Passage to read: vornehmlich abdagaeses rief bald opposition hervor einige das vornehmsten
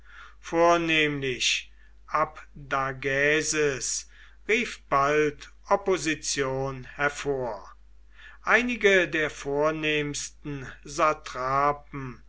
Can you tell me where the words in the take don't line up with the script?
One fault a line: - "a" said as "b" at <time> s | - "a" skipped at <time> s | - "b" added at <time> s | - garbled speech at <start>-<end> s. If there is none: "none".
- "das" said as "der" at 9.1 s